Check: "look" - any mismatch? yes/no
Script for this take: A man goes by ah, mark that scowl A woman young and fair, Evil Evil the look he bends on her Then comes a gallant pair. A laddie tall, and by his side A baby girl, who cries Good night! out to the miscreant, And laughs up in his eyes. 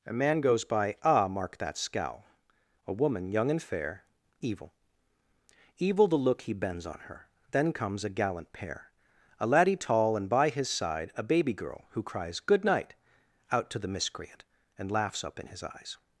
no